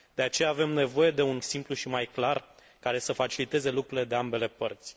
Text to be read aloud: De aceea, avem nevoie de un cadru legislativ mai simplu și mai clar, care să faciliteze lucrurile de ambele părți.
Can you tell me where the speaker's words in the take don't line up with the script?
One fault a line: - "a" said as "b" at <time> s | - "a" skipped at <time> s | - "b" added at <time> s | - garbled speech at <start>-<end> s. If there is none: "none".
- "cadru legislativ mai" skipped at 1.4 s